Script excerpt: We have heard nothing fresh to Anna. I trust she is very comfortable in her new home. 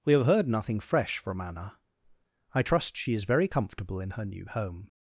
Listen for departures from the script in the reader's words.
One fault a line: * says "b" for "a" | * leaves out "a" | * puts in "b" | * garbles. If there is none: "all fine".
* says "from" for "to"